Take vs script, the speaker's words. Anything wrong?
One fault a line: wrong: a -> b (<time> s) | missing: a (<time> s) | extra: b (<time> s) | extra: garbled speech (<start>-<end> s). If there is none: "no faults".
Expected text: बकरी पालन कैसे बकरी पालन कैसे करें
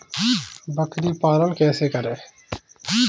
missing: बकरी पालन कैसे (1.9 s)